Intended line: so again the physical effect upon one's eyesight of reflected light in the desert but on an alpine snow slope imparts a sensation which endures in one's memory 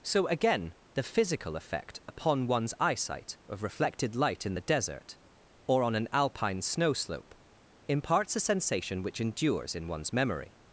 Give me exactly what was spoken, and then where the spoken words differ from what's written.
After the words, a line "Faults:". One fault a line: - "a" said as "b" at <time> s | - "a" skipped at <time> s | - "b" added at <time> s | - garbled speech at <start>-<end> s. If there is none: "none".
so again the physical effect upon one's eyesight of reflected light in the desert or on an alpine snow slope imparts a sensation which endures in one's memory
Faults:
- "but" said as "or" at 5.7 s